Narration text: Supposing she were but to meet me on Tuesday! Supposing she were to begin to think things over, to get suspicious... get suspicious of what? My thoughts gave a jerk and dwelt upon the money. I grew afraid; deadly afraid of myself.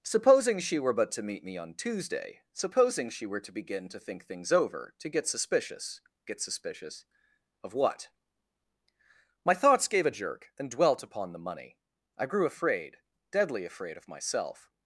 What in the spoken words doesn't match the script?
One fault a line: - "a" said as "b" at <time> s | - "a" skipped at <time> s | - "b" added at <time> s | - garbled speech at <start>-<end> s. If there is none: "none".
none